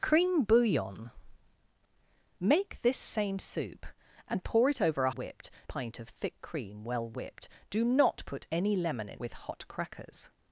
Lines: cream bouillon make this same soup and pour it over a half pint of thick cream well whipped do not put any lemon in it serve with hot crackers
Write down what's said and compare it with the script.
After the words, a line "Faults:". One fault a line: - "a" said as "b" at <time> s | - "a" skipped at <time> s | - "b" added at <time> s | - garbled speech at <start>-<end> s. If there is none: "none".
cream bouillon make this same soup and pour it over a whipped pint of thick cream well whipped do not put any lemon in with hot crackers
Faults:
- "half" said as "whipped" at 5.1 s
- "it serve" skipped at 9.2 s